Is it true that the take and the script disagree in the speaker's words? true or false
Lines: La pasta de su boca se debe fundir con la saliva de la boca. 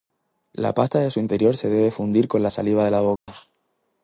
true